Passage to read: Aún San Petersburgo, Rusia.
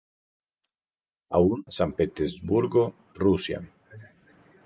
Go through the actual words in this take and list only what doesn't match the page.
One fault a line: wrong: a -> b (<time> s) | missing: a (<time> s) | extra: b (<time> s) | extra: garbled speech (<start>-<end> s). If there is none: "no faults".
no faults